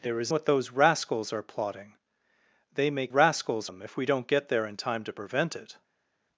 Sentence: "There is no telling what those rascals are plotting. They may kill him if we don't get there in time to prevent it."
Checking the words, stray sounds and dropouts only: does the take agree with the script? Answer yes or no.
no